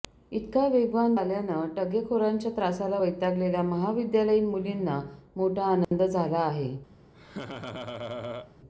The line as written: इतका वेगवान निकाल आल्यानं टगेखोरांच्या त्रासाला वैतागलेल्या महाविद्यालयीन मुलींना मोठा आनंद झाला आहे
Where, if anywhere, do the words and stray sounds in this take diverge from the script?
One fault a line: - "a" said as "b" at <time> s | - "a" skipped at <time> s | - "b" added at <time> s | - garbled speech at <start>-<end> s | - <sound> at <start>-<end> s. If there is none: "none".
- "निकाल" skipped at 1.1 s
- dropout at 5.8-5.9 s
- laugh at 7.1-8.5 s